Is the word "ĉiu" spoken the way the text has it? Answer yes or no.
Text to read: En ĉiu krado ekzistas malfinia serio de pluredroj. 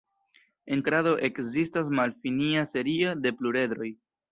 no